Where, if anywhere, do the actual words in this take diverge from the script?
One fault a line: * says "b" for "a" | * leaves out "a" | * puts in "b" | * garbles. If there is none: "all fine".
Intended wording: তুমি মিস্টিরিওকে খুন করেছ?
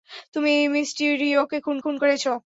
* puts in "খুন"